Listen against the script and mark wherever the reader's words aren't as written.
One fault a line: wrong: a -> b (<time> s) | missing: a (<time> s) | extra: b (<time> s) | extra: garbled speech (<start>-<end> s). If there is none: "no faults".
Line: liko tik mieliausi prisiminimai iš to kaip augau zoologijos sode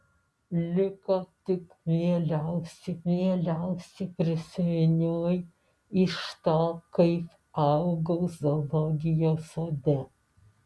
extra: mieliausi (3.1 s)